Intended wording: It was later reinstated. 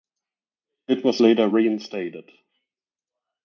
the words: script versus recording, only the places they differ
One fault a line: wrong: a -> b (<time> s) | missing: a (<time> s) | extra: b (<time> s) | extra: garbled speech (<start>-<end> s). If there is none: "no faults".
no faults